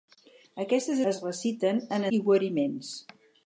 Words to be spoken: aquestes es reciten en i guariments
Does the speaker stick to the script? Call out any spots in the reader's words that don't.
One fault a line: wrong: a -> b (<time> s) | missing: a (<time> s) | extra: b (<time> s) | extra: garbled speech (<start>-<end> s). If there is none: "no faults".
no faults